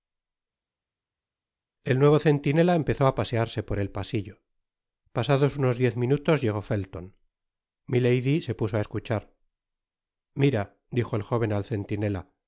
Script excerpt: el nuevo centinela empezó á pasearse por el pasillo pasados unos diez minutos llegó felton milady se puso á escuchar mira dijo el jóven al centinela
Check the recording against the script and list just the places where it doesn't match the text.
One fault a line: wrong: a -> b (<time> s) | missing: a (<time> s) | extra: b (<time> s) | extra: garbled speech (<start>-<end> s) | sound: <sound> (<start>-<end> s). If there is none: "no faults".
no faults